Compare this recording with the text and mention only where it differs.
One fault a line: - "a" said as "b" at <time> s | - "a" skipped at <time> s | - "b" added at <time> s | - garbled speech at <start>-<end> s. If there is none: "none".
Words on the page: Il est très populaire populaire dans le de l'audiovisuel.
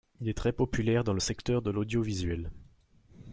- "populaire" skipped at 1.0 s
- "secteur" added at 1.2 s